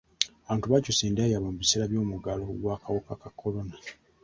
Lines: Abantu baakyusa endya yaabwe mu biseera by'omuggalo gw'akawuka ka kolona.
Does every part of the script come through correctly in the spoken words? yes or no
yes